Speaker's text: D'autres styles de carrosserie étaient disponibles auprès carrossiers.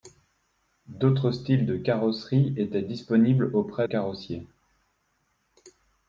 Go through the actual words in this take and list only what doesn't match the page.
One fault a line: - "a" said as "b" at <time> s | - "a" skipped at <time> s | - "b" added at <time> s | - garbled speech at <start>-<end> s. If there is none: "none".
none